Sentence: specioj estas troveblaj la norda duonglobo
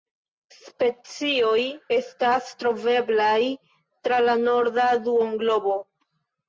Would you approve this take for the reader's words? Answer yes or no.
no